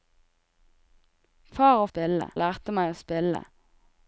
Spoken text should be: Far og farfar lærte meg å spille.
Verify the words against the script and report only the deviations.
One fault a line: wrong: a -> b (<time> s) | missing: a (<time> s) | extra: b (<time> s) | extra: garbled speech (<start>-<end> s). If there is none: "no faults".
wrong: farfar -> spille (1.9 s)